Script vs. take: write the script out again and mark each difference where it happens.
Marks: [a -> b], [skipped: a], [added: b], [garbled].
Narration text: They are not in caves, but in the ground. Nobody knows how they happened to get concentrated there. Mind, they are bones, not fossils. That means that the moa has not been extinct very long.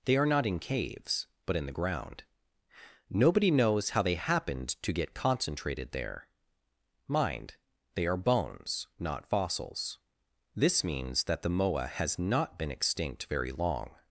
They are not in caves, but in the ground. Nobody knows how they happened to get concentrated there. Mind, they are bones, not fossils. [That -> This] means that the moa has not been extinct very long.